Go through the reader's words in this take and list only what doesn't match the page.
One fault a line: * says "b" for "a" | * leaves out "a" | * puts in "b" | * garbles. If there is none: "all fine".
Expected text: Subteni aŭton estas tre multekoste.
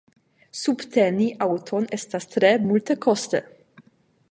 all fine